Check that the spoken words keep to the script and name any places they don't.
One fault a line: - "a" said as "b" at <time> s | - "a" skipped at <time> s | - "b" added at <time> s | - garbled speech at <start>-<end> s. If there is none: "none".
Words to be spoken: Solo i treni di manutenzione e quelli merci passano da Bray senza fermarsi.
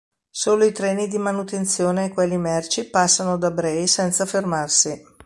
none